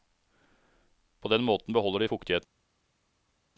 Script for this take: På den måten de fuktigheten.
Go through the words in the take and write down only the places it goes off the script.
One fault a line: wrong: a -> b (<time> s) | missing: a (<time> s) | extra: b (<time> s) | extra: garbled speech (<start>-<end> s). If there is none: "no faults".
extra: beholder (1.7 s)